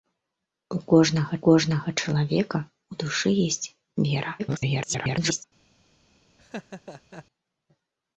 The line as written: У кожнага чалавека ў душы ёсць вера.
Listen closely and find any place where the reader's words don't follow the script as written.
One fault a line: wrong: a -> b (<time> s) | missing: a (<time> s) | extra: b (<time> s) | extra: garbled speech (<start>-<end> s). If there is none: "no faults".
extra: кожнага (1.5 s)
extra: garbled speech (4.4-5.4 s)